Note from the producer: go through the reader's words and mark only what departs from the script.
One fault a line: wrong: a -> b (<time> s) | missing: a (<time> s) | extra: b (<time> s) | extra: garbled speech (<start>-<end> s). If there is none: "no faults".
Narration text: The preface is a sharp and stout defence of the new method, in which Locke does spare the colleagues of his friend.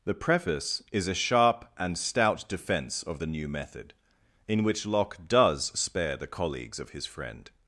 no faults